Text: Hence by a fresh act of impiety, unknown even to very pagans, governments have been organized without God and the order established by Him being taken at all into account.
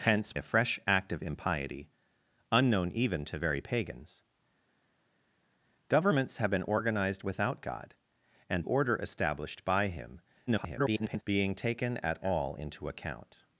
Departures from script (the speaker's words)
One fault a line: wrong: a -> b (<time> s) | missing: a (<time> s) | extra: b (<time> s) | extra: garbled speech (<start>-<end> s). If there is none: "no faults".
missing: by (0.3 s)
missing: the (8.6 s)
extra: garbled speech (10.5-11.2 s)